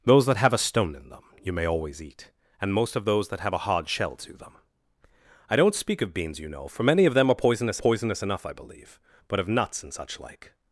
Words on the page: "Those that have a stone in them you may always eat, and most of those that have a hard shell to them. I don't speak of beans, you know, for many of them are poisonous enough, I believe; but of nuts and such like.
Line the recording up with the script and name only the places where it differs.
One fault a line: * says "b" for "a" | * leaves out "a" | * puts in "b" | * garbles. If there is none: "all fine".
* puts in "poisonous"